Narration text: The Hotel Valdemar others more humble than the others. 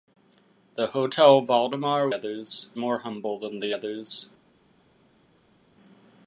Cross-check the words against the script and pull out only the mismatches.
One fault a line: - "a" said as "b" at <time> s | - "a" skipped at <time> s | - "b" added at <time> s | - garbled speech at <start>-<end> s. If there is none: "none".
none